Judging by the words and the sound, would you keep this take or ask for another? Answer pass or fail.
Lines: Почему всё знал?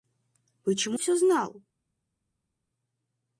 pass